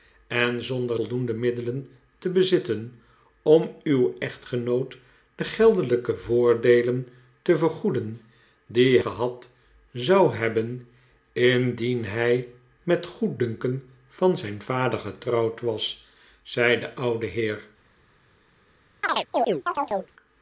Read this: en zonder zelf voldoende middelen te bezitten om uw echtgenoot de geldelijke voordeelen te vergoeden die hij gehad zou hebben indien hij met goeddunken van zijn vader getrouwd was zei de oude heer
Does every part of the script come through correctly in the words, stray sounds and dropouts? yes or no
no